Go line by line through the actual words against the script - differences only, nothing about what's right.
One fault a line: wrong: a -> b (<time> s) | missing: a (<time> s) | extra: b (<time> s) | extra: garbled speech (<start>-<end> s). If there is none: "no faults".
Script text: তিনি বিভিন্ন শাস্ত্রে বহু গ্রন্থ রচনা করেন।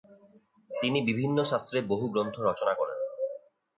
no faults